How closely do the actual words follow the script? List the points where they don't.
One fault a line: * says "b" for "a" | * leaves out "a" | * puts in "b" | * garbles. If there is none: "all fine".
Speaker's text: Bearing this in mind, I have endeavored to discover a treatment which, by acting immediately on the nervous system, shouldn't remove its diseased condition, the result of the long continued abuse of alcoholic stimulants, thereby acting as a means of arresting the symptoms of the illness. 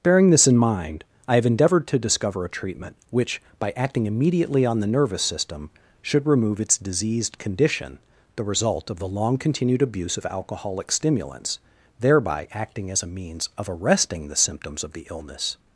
* says "should" for "shouldn't"